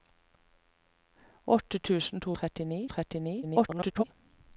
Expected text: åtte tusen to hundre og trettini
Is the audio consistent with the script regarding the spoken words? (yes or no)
no